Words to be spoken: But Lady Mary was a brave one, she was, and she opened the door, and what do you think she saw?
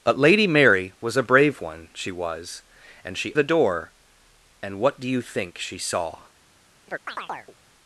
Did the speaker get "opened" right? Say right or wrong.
wrong